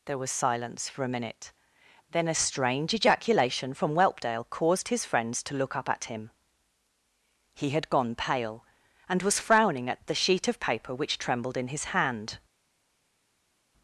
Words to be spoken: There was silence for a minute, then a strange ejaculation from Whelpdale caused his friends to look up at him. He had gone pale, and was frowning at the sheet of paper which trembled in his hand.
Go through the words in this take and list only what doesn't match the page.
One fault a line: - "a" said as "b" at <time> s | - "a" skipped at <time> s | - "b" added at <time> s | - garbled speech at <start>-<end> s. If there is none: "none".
none